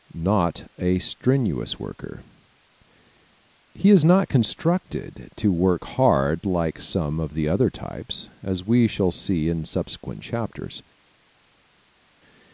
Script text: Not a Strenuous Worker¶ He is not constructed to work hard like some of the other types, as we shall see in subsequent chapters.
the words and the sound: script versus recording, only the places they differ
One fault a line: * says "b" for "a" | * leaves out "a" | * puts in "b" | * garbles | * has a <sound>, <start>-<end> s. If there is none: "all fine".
all fine